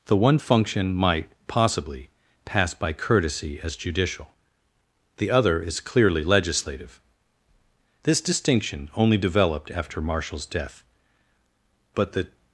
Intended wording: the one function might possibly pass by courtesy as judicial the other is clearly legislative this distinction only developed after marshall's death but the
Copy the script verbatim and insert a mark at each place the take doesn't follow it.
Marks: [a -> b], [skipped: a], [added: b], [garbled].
the one function might possibly pass by courtesy as judicial the other is clearly legislative this distinction only developed after marshall's death but the